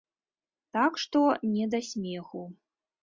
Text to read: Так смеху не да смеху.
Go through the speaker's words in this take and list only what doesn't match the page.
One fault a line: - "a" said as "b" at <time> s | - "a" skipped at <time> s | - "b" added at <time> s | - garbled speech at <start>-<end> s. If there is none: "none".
- "смеху" said as "што" at 1.0 s